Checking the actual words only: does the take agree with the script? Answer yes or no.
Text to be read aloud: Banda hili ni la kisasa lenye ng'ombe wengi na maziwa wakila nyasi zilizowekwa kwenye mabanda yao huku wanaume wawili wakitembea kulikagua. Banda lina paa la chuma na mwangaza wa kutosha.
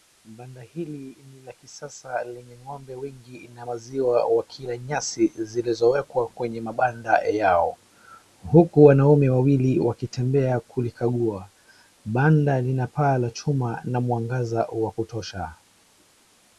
yes